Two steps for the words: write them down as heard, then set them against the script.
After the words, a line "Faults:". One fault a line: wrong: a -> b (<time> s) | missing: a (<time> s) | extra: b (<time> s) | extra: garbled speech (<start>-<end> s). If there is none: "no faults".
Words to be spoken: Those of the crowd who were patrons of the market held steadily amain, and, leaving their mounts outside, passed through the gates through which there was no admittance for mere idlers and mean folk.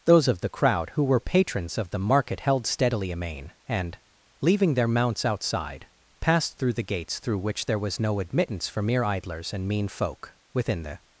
Those of the crowd who were patrons of the market held steadily amain, and, leaving their mounts outside, passed through the gates through which there was no admittance for mere idlers and mean folk. Within the
Faults:
extra: Within the (10.5 s)